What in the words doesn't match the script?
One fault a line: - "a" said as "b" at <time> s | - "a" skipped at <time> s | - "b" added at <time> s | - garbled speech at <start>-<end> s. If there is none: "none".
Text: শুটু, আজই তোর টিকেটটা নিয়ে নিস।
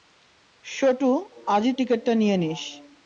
- "তোর" skipped at 1.7 s